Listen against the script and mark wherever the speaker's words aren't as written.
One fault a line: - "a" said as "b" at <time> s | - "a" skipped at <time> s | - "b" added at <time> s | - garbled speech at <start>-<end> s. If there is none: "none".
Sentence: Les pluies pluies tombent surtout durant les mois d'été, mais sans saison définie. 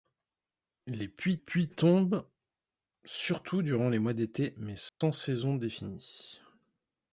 none